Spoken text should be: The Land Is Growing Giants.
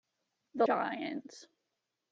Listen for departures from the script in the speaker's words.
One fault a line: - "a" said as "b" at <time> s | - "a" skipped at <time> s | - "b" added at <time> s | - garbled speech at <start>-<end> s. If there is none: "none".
- "Land Is Growing" skipped at 0.7 s